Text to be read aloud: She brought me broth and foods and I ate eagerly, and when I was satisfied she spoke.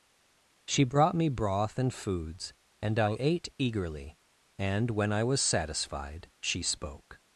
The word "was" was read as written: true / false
true